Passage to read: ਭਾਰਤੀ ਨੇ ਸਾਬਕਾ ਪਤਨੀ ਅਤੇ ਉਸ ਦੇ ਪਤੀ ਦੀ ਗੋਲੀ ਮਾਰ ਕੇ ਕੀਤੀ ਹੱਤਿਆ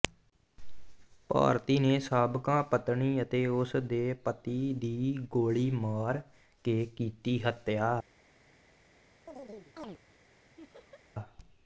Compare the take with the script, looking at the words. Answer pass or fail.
pass